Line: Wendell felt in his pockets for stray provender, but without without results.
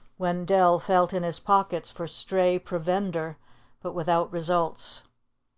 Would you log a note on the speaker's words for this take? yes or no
yes